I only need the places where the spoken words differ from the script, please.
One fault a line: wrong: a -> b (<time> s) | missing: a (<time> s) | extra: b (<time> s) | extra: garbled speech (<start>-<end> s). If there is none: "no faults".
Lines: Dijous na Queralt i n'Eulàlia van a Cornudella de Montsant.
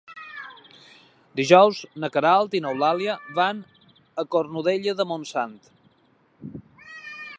no faults